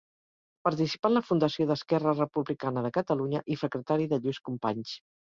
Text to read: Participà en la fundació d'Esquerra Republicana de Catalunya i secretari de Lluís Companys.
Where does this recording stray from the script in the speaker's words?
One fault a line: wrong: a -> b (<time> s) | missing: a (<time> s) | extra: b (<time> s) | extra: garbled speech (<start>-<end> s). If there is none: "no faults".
no faults